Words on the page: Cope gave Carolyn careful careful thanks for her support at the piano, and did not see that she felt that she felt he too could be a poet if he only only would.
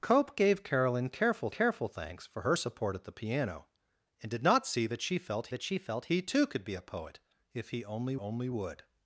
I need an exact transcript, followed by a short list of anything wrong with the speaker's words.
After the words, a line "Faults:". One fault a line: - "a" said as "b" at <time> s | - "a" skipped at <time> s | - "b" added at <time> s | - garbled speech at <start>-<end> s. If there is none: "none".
Cope gave Carolyn careful careful thanks for her support at the piano, and did not see that she felt that she felt he too could be a poet if he only only would.
Faults:
none